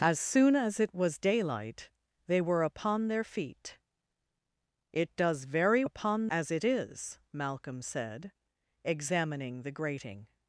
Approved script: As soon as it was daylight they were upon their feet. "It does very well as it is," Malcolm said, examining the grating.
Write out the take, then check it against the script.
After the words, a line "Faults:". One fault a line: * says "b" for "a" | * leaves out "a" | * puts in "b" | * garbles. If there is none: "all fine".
As soon as it was daylight they were upon their feet. "It does very upon as it is," Malcolm said, examining the grating.
Faults:
* says "upon" for "well"